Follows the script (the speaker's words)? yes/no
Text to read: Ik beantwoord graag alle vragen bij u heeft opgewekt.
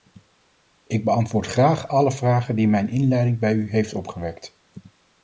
no